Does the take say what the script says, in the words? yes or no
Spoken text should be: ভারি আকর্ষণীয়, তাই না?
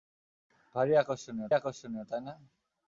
no